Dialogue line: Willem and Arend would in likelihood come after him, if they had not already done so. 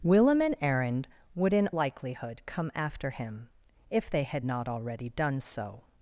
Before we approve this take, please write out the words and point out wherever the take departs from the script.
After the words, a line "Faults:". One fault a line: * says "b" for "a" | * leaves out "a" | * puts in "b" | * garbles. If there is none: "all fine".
Willem and Arend would in likelihood come after him, if they had not already done so.
Faults:
all fine